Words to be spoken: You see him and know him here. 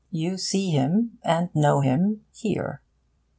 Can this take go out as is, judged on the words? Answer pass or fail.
pass